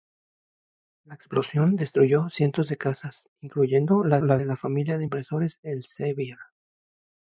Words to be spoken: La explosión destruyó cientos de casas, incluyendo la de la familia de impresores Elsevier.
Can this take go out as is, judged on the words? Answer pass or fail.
fail